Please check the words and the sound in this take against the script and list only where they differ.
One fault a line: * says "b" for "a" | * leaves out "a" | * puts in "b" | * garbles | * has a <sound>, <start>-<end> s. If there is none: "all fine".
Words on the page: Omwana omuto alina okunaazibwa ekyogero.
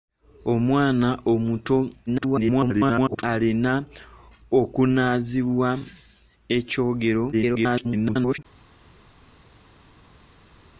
* garbles
* garbles